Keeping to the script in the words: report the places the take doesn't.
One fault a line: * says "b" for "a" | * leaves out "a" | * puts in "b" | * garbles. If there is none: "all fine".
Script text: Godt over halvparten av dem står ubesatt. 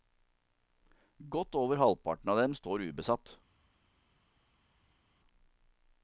all fine